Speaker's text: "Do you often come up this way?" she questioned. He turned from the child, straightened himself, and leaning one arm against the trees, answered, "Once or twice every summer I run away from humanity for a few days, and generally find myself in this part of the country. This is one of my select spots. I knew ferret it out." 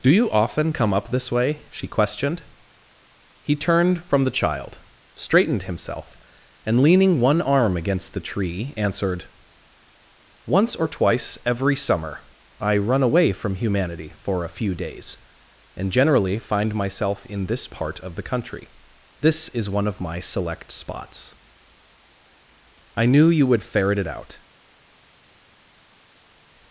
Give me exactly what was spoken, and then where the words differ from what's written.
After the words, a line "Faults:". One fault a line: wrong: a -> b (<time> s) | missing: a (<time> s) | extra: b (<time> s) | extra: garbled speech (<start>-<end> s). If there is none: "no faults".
"Do you often come up this way?" she questioned. He turned from the child, straightened himself, and leaning one arm against the tree, answered, "Once or twice every summer I run away from humanity for a few days, and generally find myself in this part of the country. This is one of my select spots. I knew you would ferret it out."
Faults:
wrong: trees -> tree (8.3 s)
extra: you would (23.3 s)